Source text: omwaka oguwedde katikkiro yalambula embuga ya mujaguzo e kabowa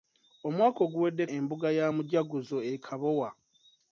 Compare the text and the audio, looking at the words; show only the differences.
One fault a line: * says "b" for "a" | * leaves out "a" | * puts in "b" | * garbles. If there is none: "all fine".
* leaves out "katikkiro yalambula"